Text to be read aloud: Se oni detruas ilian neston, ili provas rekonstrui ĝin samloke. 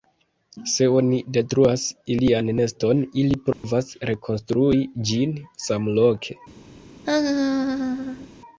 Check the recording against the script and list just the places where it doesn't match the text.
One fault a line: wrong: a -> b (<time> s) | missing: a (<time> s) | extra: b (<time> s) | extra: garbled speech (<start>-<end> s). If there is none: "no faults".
no faults